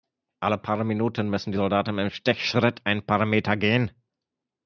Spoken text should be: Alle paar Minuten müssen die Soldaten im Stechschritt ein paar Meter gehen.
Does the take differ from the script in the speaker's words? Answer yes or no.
no